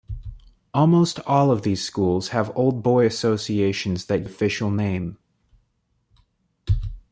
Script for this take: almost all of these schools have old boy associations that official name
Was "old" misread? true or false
false